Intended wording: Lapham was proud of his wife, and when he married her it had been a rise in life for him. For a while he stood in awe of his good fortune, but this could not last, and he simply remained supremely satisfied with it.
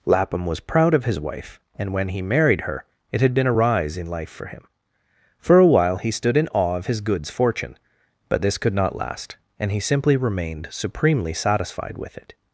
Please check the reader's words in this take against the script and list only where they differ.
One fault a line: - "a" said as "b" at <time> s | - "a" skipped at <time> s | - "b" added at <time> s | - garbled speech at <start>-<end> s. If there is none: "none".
- "good" said as "goods" at 7.0 s